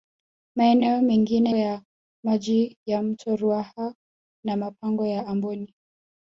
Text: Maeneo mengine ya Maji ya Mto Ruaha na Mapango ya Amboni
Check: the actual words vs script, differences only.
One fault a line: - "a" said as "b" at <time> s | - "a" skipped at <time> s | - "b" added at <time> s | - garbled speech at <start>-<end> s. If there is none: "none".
none